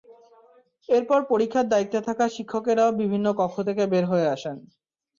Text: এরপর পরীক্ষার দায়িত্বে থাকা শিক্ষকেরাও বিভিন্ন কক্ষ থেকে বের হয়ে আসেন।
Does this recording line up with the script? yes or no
yes